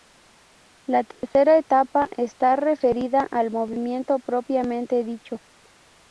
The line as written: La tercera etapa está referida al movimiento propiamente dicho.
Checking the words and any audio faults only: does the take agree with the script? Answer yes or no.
no